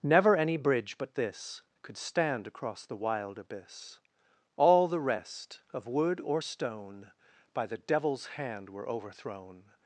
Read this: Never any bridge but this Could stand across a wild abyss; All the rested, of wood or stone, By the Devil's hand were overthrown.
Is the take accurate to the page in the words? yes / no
no